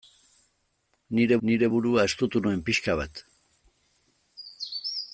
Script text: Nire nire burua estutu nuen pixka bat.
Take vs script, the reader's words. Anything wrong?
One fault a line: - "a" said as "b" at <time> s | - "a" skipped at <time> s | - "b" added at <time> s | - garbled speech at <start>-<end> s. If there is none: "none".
none